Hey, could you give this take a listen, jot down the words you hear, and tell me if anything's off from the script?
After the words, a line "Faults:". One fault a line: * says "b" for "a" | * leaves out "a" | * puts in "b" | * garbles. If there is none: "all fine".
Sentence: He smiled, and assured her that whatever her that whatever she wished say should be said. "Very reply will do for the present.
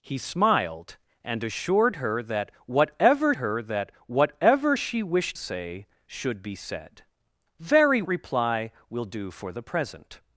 He smiled, and assured her that whatever her that whatever she wished say should be said. "Very reply will do for the present.
Faults:
all fine